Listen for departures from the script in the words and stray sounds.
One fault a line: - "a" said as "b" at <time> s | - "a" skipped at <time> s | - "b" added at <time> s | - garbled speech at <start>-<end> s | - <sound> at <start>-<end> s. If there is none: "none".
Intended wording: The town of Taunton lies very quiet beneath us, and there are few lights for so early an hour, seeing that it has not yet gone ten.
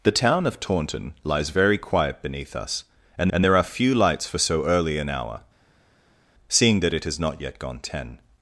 - "and" added at 3.3 s